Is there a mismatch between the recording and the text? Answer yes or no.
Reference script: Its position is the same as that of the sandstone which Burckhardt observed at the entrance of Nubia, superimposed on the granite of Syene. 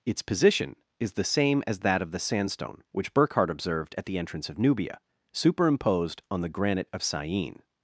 no